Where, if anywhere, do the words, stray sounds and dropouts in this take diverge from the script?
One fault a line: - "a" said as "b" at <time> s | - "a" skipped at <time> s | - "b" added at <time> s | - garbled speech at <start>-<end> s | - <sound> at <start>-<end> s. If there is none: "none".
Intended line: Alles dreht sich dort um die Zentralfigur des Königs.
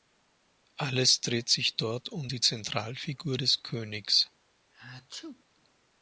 - sneeze at 4.7-5.4 s